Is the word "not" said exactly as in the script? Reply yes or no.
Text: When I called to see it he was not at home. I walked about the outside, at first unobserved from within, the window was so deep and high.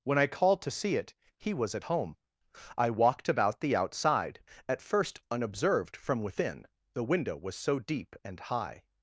no